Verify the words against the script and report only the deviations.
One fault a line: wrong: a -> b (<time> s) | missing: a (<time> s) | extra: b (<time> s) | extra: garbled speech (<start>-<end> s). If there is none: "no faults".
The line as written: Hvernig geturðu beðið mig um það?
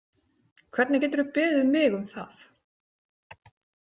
no faults